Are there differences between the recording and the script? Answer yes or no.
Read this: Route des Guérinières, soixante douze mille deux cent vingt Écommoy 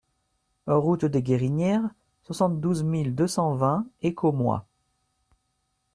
no